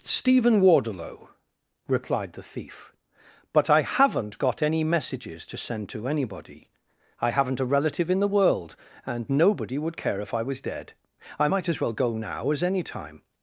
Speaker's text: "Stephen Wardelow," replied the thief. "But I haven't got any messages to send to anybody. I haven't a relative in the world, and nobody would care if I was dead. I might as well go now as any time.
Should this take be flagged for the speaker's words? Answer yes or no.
no